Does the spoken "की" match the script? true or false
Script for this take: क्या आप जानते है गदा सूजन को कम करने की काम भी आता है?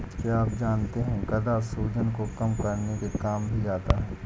false